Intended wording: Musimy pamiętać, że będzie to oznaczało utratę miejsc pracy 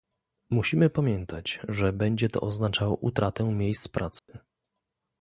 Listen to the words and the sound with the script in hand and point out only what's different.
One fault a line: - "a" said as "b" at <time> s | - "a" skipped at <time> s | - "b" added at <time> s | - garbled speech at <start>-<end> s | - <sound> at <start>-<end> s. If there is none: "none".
- dropout at 4.2-4.3 s